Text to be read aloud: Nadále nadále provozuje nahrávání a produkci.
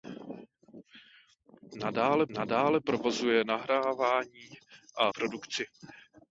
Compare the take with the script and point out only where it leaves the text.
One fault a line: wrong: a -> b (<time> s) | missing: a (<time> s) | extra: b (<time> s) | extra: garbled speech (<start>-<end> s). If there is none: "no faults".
no faults